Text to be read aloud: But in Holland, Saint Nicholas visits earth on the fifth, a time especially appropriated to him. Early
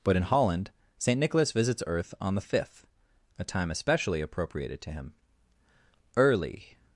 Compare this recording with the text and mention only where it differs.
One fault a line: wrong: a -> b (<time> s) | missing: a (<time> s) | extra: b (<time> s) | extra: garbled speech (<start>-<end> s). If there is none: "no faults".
no faults